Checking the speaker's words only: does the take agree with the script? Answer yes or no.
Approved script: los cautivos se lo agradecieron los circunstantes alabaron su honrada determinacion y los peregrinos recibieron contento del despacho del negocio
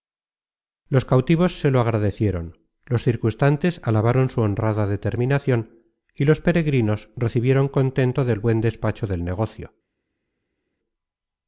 no